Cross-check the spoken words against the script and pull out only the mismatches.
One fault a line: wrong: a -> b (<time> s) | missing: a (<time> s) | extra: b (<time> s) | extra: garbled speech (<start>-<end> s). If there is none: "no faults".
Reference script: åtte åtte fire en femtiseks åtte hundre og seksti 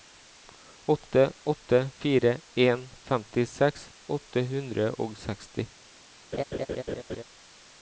no faults